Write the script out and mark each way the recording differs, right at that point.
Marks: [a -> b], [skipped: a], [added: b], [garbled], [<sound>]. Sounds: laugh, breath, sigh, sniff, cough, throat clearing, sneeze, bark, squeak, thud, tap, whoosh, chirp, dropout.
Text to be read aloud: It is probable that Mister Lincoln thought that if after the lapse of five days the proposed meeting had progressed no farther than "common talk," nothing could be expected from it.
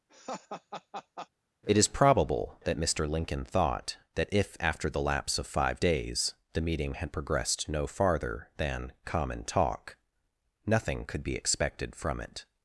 [laugh] It is probable that Mister Lincoln thought that if after the lapse of five days the [skipped: proposed] meeting had progressed no farther than "common talk," nothing could be expected from it.